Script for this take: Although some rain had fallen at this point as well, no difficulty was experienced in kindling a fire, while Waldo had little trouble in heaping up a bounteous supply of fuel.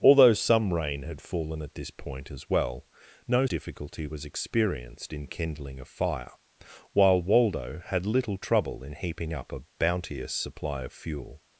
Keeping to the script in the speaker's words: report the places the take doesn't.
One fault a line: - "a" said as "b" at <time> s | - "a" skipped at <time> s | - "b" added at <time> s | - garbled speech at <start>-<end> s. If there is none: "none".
none